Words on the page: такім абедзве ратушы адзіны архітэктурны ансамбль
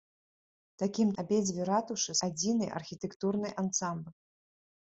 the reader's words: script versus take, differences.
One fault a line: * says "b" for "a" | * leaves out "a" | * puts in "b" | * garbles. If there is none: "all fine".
all fine